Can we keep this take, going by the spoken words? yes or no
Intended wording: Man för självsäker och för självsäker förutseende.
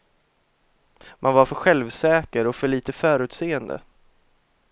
no